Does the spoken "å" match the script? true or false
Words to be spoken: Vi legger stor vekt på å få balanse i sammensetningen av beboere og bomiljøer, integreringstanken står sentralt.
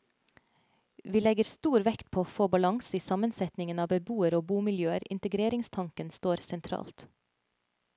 true